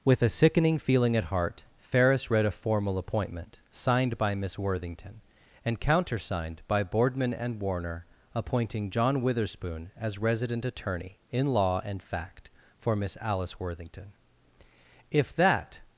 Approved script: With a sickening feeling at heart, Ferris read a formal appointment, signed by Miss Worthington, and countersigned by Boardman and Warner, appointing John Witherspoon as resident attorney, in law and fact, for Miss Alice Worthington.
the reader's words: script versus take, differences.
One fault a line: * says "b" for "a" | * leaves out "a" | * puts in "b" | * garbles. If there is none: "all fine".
* puts in "If that"